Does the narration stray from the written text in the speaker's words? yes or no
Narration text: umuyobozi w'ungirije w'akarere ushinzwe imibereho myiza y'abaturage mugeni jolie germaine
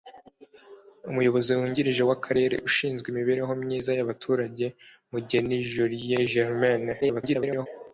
yes